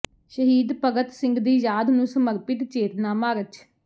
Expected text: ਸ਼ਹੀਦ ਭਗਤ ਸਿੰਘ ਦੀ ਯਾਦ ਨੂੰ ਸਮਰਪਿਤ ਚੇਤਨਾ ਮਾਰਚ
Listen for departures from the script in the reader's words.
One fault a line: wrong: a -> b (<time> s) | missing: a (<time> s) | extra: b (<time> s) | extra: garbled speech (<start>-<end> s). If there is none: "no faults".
no faults